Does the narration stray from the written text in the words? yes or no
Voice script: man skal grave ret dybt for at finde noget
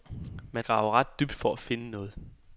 yes